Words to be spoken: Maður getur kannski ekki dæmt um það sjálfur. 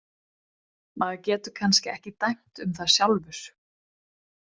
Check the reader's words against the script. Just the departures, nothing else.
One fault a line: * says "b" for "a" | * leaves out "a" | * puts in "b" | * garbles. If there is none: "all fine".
all fine